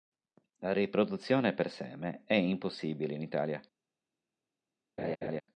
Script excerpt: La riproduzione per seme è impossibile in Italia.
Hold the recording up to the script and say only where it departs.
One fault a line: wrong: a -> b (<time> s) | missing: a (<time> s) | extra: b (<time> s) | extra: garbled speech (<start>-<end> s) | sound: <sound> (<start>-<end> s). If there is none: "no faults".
sound: laugh (5.0-5.4 s)